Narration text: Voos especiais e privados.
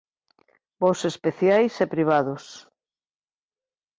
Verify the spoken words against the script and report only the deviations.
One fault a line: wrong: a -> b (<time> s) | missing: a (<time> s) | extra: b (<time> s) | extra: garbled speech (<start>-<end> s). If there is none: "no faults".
no faults